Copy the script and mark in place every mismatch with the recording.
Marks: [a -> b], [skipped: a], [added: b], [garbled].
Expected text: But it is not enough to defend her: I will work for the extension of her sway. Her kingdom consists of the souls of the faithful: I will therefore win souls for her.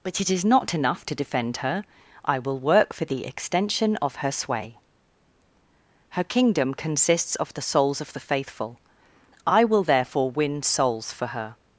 But it is not enough to defend her: I will work for the extension of her sway. Her kingdom consists of the souls of the faithful: I will therefore win souls for her.